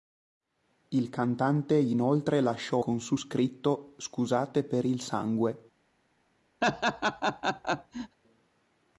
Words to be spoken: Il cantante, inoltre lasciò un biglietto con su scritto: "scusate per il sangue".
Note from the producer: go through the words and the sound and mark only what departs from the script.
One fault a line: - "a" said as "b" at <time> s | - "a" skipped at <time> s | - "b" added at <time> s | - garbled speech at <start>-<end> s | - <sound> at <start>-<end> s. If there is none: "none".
- "un biglietto" skipped at 2.8 s
- laugh at 6.6-8.2 s